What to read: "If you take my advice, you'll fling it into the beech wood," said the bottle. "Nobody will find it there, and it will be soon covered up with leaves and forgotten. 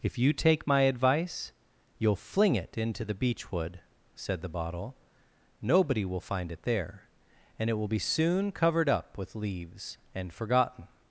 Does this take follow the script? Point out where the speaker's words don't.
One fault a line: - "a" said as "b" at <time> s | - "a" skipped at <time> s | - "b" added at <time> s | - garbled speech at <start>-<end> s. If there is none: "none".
none